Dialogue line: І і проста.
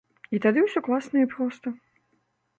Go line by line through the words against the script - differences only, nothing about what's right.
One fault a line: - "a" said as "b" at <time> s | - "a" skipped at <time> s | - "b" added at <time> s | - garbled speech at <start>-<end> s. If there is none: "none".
- "тады ўсё класна" added at 0.5 s